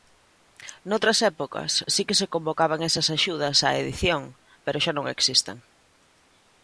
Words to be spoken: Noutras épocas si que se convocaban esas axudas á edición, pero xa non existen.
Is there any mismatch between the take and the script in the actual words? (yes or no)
no